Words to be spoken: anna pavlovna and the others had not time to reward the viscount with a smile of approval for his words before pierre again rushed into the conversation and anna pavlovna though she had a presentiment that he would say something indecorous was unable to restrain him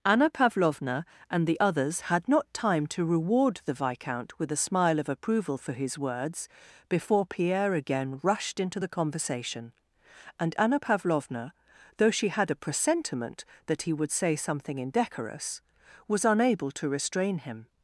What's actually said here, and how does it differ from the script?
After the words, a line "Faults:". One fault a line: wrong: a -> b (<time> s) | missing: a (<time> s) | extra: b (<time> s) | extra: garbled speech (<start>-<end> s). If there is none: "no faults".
anna pavlovna and the others had not time to reward the viscount with a smile of approval for his words before pierre again rushed into the conversation and anna pavlovna though she had a presentiment that he would say something indecorous was unable to restrain him
Faults:
no faults